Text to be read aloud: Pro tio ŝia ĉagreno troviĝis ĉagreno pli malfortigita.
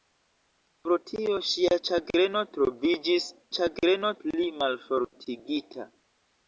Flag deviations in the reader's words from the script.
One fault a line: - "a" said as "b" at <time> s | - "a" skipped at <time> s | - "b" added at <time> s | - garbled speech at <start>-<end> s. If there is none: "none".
none